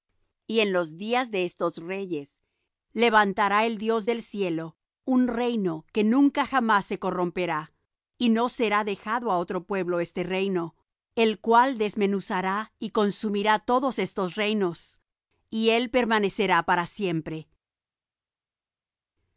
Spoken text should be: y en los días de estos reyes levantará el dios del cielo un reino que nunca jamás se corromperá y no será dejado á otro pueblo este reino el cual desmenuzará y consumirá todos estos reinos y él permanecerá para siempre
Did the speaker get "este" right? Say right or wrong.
right